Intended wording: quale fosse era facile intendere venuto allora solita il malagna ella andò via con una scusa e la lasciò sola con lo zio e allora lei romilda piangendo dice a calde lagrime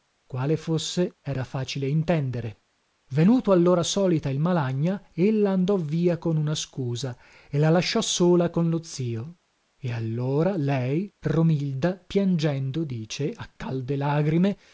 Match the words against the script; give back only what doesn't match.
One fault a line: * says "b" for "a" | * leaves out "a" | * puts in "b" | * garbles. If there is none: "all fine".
all fine